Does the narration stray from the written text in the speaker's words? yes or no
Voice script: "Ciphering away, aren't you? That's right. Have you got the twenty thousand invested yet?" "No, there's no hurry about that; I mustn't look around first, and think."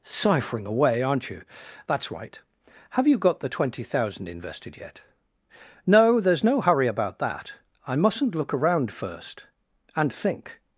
no